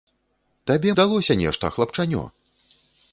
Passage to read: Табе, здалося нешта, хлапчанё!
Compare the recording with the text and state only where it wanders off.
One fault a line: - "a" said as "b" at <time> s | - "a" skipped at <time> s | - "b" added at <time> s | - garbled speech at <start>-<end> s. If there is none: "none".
none